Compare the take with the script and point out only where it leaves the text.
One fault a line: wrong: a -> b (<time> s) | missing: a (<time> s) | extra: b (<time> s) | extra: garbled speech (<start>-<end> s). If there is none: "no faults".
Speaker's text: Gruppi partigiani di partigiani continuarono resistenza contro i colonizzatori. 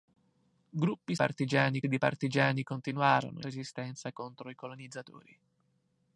no faults